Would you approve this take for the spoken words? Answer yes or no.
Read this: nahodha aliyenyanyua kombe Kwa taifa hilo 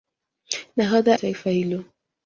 no